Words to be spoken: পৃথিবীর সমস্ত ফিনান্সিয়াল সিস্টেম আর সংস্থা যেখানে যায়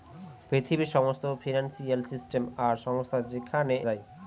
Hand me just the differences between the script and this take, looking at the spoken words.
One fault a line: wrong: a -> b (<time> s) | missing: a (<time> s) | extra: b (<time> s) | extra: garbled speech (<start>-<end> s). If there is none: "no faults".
no faults